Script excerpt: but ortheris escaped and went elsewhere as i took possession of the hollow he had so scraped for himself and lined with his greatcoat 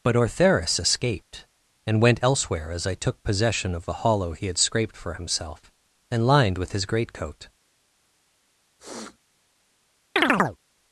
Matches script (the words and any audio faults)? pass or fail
fail